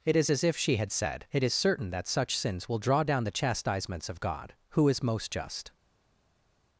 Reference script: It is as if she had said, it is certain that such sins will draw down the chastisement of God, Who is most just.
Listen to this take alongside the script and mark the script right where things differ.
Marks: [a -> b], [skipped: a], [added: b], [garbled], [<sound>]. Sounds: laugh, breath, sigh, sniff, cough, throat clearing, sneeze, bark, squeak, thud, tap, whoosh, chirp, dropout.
It is as if she had said, it is certain that such sins will draw down the [chastisement -> chastisements] of God, Who is most just.